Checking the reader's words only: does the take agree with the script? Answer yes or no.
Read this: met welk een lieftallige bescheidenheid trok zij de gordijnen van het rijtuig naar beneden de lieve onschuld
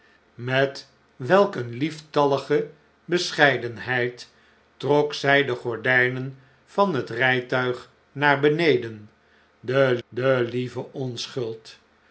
no